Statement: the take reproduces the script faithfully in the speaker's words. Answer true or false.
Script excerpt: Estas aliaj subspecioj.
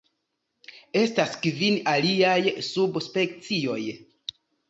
false